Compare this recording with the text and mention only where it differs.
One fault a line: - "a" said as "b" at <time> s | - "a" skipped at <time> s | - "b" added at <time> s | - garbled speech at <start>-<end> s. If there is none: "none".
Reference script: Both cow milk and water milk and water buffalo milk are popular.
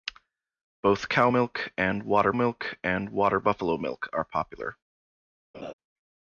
none